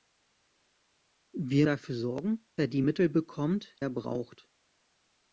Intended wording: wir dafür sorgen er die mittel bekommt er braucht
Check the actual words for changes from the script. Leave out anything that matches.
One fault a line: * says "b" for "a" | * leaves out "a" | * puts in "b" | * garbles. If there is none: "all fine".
all fine